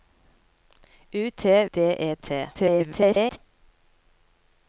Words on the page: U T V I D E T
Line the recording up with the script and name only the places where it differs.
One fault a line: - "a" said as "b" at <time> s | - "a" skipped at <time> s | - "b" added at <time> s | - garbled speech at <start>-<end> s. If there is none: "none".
- "V I" skipped at 1.6 s
- garbled speech at 2.5-3.4 s